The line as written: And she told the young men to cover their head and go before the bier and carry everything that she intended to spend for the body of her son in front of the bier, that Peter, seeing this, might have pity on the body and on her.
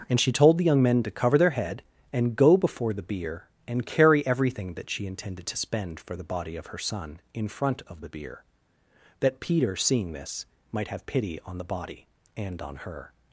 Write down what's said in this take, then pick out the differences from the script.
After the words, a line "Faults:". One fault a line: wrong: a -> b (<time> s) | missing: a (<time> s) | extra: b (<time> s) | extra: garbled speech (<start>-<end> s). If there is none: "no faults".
And she told the young men to cover their head and go before the bier and carry everything that she intended to spend for the body of her son in front of the bier, that Peter, seeing this, might have pity on the body and on her.
Faults:
no faults